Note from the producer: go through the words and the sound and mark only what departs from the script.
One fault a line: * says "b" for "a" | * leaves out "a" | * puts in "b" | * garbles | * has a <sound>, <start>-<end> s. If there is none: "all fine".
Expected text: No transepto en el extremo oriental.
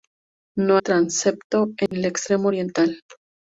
* has a dropout, 1.9-1.9 s